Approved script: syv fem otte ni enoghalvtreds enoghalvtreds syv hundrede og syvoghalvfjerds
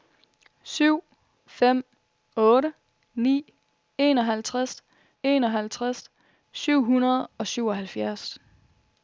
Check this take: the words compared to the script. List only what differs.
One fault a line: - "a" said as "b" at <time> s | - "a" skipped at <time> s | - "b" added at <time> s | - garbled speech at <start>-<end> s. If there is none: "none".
none